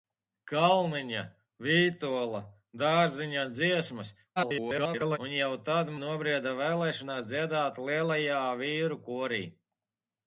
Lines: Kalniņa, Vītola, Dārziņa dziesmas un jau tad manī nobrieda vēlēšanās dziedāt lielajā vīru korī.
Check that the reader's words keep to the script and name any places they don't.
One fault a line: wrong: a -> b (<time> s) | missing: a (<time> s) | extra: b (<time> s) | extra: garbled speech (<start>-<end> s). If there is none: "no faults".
extra: garbled speech (4.4-5.2 s)
missing: manī (5.9 s)